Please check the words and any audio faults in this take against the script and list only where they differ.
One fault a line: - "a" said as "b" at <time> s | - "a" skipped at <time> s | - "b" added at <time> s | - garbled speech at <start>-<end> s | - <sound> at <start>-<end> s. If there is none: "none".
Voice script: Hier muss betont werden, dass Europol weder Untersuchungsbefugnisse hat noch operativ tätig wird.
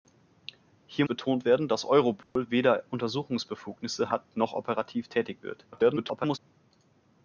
- "muss" skipped at 1.1 s
- dropout at 2.2-2.4 s
- garbled speech at 5.7-6.4 s